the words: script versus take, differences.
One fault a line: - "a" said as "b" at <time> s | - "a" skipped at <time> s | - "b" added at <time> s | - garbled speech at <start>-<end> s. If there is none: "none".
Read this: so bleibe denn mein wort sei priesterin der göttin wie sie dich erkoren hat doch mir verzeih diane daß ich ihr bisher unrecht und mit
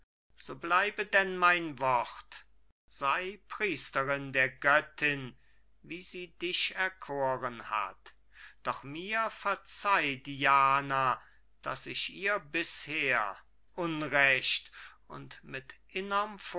none